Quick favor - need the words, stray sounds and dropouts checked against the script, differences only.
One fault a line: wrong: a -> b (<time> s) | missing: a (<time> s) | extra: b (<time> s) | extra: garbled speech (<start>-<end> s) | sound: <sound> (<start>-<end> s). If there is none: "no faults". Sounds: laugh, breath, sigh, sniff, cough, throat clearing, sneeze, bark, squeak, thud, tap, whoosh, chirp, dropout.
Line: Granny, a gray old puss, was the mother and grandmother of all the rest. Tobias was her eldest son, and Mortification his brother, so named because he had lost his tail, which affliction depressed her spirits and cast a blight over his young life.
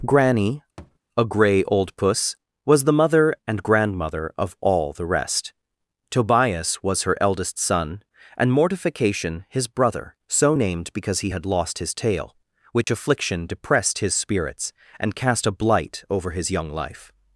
sound: thud (0.8-1.0 s)
sound: dropout (12.8-12.9 s)
wrong: her -> his (14.0 s)